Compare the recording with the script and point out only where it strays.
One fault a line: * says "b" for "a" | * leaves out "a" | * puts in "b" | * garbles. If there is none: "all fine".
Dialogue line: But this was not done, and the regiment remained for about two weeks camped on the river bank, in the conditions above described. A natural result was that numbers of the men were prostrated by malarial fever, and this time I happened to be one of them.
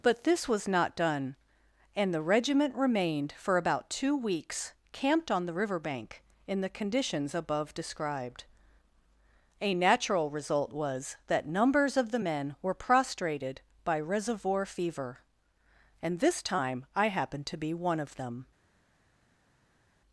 * says "reservoir" for "malarial"